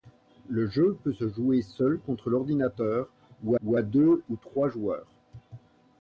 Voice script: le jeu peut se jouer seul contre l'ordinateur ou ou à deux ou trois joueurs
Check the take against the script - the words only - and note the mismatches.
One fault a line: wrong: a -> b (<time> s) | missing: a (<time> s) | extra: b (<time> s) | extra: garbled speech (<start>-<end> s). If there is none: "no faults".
no faults